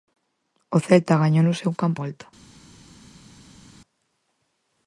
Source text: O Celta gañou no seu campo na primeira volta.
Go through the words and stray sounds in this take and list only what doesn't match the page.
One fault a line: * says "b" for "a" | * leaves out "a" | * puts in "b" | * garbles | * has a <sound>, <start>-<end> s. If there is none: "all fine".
* leaves out "na primeira"